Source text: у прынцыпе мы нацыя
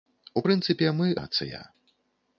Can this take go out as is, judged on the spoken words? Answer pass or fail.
pass